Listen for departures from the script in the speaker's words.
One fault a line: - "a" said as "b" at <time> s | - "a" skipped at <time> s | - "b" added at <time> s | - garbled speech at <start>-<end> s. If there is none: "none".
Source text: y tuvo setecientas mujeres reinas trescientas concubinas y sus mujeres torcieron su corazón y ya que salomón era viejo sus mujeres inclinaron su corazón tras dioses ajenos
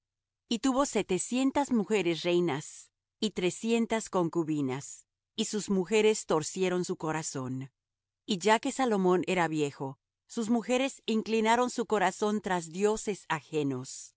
- "y" added at 3.2 s